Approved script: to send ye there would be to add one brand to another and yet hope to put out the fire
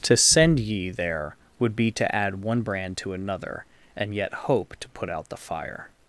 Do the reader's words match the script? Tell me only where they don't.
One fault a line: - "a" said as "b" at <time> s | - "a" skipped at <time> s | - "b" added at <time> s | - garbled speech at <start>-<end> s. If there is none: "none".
none